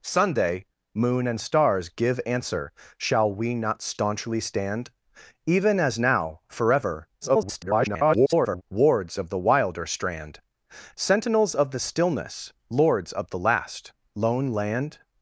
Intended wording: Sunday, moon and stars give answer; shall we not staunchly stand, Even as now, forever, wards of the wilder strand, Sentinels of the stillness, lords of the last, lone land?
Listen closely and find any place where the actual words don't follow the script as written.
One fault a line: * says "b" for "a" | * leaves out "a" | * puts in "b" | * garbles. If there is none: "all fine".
* garbles